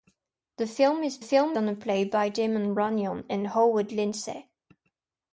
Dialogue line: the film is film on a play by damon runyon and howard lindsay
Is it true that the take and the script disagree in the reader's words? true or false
false